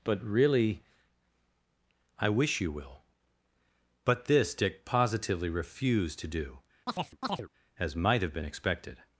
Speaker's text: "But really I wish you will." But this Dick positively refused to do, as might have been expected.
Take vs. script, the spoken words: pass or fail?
pass